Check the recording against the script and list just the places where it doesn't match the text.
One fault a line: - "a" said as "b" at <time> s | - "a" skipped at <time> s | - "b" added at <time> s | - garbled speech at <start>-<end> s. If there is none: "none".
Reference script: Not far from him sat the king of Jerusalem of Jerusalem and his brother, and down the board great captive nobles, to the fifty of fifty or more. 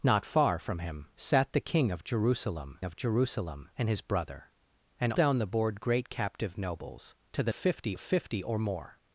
none